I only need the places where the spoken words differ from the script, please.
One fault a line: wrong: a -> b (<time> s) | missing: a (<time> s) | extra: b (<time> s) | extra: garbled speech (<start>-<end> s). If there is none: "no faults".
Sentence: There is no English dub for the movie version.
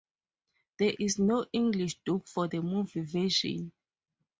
no faults